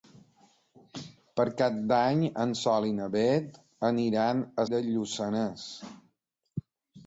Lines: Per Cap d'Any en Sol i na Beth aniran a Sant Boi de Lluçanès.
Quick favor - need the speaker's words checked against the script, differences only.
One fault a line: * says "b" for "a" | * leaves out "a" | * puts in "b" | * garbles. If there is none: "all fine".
* leaves out "Sant Boi"